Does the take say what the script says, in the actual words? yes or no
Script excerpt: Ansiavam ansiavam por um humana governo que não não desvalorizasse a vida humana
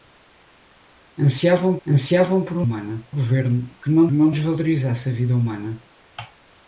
yes